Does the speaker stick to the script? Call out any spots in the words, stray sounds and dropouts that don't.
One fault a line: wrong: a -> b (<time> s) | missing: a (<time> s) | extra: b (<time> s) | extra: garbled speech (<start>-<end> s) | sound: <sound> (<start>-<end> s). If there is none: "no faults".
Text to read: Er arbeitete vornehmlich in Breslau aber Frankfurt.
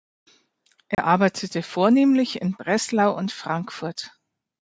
sound: dropout (0.9-1.0 s)
wrong: aber -> und (3.2 s)